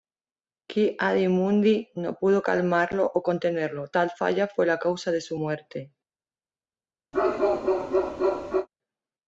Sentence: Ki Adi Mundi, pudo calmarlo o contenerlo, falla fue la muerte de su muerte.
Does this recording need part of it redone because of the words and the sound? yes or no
yes